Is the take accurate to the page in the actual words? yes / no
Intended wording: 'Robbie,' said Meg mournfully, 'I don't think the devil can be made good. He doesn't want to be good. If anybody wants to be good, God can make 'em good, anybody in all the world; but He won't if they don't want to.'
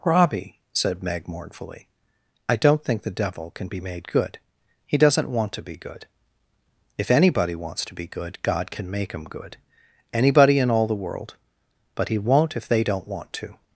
no